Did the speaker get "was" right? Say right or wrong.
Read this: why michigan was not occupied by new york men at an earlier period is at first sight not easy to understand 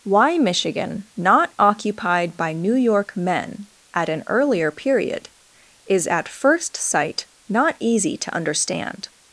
wrong